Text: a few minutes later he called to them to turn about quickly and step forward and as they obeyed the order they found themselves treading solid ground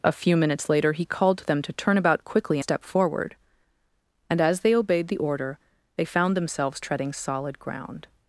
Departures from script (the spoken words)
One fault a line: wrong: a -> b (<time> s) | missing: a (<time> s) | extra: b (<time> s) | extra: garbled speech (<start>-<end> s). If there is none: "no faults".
missing: and (2.6 s)